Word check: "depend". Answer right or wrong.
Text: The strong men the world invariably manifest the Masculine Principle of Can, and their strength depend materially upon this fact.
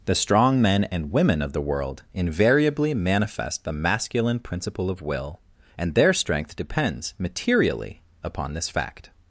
wrong